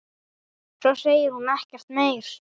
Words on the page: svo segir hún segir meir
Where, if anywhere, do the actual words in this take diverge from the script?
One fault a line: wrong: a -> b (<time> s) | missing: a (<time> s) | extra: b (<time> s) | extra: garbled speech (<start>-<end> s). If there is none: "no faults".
wrong: segir -> ekkert (1.6 s)